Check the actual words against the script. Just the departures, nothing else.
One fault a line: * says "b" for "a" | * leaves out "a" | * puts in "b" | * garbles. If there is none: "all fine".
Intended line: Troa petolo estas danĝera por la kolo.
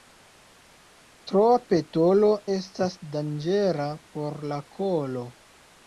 all fine